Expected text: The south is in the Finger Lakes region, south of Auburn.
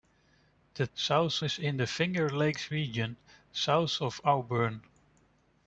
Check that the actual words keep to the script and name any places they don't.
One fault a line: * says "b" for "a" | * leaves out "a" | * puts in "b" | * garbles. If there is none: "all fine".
all fine